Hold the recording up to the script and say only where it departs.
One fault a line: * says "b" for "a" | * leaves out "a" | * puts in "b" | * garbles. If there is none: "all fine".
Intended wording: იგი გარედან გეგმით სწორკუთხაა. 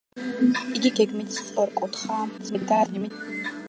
* leaves out "გარედან"
* garbles